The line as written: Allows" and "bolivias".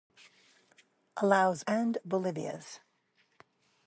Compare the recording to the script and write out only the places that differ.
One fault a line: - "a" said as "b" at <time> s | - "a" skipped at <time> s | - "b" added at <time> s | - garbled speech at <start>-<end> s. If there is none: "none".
none